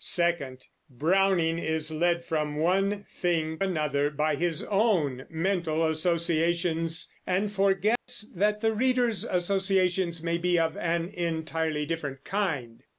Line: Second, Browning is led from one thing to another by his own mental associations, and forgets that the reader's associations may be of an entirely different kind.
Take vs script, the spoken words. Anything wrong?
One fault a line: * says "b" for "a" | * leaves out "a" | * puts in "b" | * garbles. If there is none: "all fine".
* leaves out "to"